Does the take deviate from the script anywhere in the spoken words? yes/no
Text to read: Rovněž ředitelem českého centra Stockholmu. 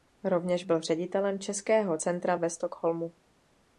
yes